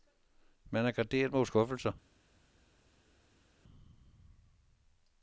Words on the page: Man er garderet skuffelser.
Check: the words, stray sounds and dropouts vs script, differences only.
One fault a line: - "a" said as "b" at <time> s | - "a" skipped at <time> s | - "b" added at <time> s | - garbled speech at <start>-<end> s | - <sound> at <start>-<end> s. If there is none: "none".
- "mod" added at 1.3 s